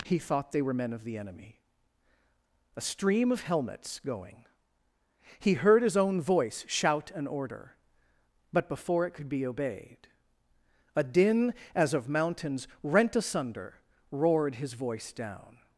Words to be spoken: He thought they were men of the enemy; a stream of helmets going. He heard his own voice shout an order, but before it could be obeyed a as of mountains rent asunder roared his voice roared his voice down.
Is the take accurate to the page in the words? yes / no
no